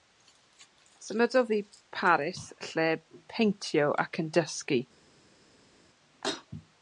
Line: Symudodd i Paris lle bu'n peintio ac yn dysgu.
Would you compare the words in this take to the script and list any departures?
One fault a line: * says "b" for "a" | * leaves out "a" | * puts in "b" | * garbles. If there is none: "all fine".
* leaves out "bu'n"